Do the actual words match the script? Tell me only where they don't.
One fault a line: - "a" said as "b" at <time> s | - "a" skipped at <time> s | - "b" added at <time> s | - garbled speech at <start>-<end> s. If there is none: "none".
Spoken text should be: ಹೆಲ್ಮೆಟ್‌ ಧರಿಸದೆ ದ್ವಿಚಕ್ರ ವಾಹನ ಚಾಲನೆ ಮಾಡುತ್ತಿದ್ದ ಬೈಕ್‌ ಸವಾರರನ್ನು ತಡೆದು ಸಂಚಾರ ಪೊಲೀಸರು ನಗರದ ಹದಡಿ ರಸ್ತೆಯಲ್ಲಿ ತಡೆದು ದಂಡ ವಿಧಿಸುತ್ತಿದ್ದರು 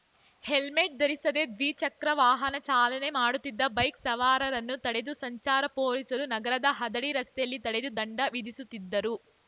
none